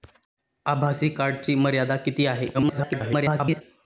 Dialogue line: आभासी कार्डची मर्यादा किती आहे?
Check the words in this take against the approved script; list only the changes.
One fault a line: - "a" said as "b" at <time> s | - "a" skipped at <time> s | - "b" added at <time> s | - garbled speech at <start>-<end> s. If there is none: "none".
- garbled speech at 2.5-3.6 s